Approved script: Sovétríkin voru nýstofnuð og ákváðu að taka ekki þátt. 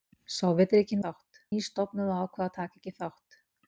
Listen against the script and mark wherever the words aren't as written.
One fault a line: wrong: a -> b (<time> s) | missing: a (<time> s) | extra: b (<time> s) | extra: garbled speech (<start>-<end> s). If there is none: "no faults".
wrong: voru -> þátt (1.0 s)